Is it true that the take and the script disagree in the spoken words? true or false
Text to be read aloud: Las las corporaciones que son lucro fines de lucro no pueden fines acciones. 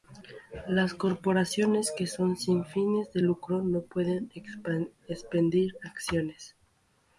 true